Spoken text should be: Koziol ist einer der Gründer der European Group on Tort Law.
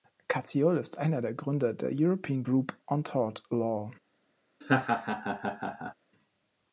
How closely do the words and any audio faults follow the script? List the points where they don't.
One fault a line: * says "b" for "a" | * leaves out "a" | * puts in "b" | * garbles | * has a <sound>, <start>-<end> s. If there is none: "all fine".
* has a laugh, 4.6-5.9 s